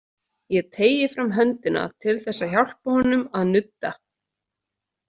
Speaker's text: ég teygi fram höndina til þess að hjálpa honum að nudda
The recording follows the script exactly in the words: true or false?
true